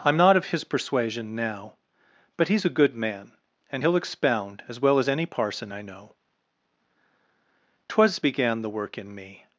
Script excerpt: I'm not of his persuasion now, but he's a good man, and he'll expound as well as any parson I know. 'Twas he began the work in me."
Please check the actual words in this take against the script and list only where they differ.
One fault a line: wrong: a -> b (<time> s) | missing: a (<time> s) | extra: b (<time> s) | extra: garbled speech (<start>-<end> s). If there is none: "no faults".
missing: he (8.2 s)